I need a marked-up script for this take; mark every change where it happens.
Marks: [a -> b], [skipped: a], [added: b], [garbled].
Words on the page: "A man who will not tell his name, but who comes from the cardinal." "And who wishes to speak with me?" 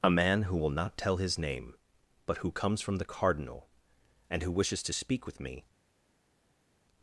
"A man who will not tell his name, but who comes from the cardinal." "And who wishes to speak with me?"